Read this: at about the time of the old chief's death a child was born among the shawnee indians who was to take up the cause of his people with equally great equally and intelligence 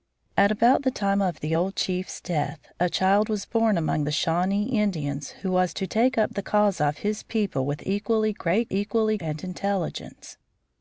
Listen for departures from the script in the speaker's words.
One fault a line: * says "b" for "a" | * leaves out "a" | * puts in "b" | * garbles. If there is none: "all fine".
all fine